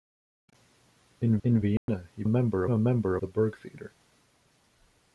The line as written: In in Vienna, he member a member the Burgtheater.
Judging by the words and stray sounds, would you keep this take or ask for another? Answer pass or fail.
fail